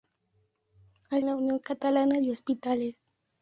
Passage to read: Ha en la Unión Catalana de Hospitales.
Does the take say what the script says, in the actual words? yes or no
yes